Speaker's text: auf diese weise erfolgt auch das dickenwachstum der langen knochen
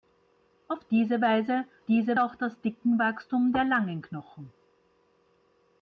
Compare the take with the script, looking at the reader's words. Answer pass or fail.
fail